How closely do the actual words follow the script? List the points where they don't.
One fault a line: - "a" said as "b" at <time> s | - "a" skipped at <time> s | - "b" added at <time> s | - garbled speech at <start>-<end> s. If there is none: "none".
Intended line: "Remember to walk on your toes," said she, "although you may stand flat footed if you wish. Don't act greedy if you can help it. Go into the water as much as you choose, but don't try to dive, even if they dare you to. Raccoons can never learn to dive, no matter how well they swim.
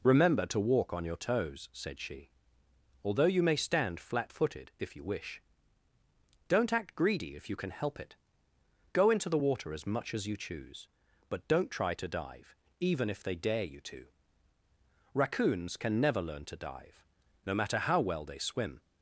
none